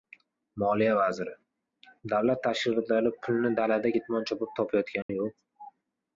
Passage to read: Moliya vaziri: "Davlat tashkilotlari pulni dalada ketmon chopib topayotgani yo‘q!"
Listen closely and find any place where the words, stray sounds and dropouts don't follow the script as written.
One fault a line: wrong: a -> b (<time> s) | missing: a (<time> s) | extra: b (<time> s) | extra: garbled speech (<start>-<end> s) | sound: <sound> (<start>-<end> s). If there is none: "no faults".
sound: dropout (5.0-5.1 s)